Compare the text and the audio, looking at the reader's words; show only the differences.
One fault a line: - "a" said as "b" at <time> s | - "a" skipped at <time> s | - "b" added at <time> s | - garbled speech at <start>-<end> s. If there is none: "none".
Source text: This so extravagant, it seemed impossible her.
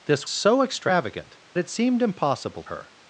none